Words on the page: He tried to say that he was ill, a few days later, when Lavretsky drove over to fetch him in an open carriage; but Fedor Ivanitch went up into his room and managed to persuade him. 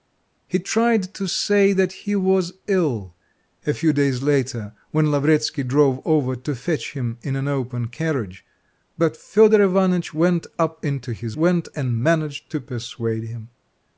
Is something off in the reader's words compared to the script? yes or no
yes